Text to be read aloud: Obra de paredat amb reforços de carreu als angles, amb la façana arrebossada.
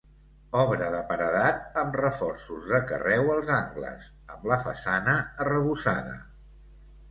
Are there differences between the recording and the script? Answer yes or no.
no